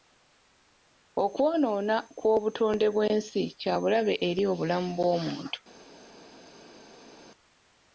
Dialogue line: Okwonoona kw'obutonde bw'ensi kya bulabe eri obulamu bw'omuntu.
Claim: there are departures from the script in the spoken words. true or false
false